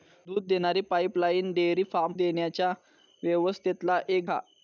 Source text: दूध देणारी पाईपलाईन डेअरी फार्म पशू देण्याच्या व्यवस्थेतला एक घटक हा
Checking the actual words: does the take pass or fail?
fail